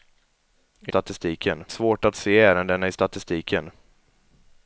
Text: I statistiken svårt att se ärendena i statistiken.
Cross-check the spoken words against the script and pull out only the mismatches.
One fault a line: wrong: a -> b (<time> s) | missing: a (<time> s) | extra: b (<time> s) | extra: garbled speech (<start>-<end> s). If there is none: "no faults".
no faults